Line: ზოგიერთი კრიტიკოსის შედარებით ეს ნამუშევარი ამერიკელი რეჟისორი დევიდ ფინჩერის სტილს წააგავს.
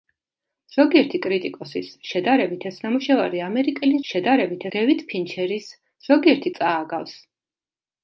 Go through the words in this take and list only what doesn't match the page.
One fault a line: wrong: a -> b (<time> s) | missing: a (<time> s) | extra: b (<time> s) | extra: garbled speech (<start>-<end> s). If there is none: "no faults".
wrong: რეჟისორი -> შედარებით (4.1 s)
wrong: სტილს -> ზოგიერთი (6.1 s)